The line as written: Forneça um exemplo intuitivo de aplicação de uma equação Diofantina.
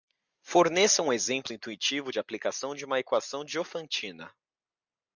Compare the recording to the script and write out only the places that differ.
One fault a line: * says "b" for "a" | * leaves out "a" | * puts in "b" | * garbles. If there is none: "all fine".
all fine